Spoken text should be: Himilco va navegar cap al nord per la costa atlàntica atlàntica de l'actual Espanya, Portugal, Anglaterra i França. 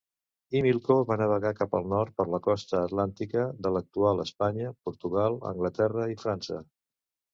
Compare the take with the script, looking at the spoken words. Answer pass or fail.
fail